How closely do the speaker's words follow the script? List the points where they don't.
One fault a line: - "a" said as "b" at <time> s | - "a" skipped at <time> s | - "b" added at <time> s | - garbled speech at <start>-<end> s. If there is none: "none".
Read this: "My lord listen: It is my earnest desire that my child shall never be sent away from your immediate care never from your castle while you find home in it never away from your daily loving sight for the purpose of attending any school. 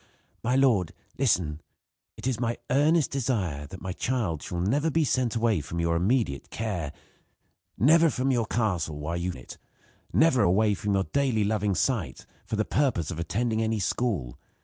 - "find home" skipped at 9.3 s